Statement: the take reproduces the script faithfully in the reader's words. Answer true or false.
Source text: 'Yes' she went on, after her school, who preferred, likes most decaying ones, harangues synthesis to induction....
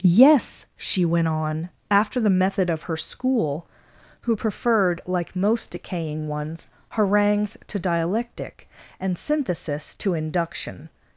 false